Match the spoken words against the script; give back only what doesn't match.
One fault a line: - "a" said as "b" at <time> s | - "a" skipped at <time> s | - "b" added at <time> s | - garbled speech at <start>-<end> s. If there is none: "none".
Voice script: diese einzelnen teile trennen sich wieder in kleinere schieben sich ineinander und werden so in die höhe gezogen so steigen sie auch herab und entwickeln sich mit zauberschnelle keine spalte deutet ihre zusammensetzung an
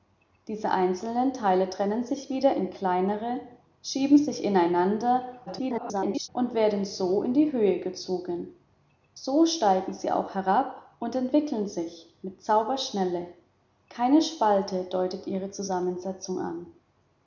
- garbled speech at 5.5-6.3 s